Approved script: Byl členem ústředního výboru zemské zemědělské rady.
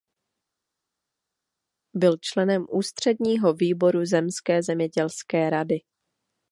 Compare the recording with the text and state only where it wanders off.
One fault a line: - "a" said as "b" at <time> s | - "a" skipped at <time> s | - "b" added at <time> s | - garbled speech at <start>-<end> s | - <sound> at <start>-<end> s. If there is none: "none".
none